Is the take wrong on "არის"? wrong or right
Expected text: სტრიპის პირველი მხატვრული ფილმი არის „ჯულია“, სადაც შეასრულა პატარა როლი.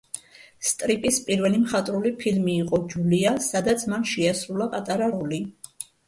wrong